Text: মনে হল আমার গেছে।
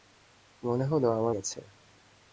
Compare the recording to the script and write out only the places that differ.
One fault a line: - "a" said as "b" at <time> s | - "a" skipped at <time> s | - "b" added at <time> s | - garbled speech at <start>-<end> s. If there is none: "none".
none